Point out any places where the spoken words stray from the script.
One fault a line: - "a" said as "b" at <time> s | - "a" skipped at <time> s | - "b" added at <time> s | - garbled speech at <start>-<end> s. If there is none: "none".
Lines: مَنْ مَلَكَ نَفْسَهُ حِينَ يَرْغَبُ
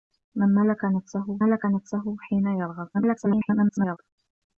- "مَلَكَ نَفْسَهُ" added at 1.4 s
- garbled speech at 2.9-4.0 s